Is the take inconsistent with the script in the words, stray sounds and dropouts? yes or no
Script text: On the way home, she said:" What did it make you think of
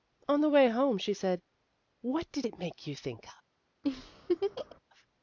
yes